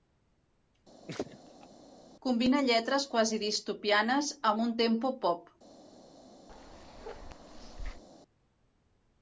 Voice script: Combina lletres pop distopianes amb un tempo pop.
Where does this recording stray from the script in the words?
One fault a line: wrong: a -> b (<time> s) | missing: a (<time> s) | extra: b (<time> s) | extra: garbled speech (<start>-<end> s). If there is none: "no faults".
wrong: pop -> quasi (3.1 s)